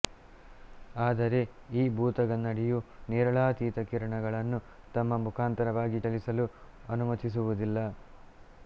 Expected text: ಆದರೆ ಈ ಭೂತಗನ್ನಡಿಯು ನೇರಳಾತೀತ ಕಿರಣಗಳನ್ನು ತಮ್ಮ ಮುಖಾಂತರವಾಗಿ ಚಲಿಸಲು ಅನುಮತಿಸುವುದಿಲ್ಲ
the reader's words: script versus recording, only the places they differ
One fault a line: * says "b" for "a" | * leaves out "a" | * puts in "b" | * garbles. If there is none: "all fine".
all fine